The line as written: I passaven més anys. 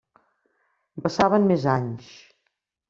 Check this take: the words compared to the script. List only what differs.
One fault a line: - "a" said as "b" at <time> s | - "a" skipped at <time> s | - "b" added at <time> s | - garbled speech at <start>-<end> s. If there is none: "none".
none